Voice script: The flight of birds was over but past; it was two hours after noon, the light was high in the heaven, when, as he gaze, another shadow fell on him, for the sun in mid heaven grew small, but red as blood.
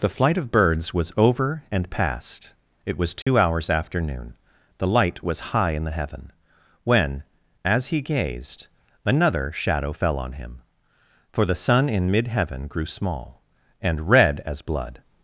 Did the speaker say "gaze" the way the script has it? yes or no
no